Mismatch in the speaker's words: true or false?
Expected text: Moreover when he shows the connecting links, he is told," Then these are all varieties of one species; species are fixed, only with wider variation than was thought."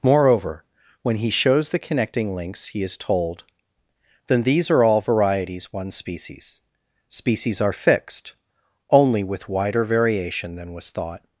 true